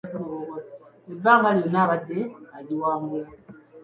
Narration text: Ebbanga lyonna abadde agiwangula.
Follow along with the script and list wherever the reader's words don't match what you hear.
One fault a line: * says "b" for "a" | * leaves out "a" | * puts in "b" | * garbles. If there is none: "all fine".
all fine